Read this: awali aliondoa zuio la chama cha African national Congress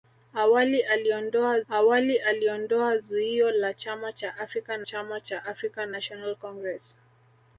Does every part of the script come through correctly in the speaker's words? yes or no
no